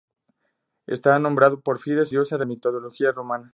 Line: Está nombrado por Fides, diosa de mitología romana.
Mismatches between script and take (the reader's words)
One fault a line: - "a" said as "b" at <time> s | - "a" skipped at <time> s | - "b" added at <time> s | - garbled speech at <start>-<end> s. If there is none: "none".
none